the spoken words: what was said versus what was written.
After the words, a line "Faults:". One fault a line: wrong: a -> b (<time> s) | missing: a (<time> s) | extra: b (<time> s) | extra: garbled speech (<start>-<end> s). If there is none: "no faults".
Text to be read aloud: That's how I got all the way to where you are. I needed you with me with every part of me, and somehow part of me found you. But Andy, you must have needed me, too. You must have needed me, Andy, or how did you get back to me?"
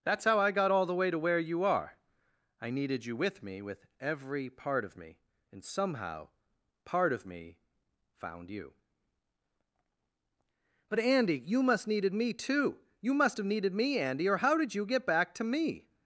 That's how I got all the way to where you are. I needed you with me with every part of me, and somehow part of me found you. But Andy, you must needed me, too. You must have needed me, Andy, or how did you get back to me?"
Faults:
missing: have (11.9 s)